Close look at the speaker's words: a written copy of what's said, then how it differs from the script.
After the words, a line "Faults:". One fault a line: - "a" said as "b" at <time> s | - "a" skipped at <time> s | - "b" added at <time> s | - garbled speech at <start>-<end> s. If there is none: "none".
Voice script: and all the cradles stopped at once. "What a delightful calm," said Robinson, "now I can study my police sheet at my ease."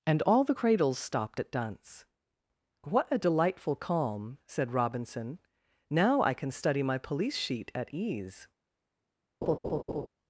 and all the cradles stopped at dunce. "What a delightful calm," said Robinson, "now I can study my police sheet at ease."
Faults:
- "once" said as "dunce" at 1.5 s
- "my" skipped at 7.9 s